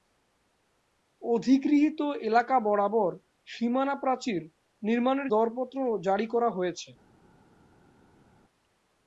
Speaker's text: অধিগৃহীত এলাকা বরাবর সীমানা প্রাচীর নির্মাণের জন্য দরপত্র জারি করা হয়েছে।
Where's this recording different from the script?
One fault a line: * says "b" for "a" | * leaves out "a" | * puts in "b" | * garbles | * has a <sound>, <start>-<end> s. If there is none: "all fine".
* leaves out "জন্য"